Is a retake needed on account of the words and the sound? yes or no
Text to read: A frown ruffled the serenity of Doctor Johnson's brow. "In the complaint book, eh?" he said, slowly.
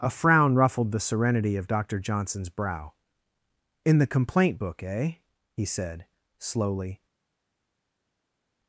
no